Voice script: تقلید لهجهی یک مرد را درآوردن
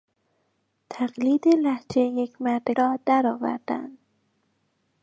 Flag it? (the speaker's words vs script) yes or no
no